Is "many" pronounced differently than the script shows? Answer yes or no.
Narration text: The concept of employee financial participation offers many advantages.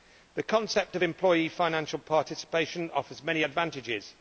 no